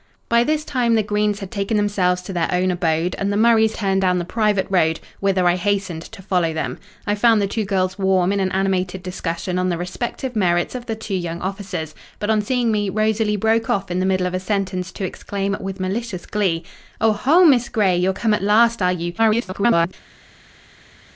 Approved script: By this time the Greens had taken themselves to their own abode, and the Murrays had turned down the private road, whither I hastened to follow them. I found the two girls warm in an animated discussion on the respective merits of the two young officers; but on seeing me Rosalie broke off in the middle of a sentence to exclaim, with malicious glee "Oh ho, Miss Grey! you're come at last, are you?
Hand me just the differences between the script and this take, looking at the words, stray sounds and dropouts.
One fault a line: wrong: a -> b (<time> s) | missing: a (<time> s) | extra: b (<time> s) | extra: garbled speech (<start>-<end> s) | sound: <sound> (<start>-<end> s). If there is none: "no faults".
missing: had (3.8 s)
extra: garbled speech (19.2-19.9 s)